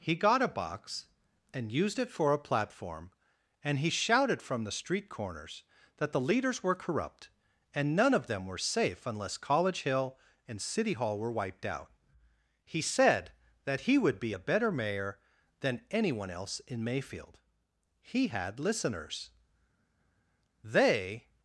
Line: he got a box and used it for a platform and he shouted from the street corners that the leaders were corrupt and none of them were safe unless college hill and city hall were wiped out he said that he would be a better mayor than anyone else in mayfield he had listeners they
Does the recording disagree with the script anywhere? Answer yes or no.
no